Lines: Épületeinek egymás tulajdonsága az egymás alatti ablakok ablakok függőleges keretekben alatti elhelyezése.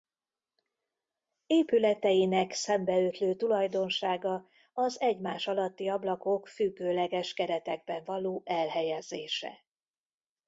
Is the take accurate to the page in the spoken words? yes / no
no